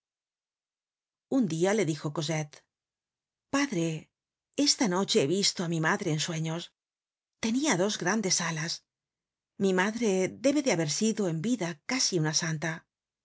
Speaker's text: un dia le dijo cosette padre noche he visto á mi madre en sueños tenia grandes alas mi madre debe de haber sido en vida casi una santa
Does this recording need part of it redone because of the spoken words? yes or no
yes